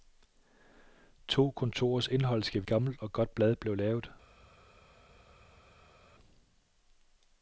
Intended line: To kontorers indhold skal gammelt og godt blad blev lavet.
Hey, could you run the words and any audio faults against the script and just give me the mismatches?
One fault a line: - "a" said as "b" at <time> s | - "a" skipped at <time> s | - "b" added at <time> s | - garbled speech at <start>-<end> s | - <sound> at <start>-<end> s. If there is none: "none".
none